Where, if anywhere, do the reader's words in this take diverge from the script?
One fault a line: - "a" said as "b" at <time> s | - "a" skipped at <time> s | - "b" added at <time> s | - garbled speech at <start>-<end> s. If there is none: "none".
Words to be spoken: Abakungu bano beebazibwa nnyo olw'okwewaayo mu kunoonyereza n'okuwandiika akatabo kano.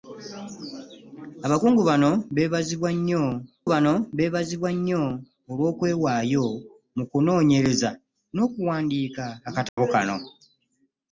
- "bano beebazibwa nnyo" added at 3.7 s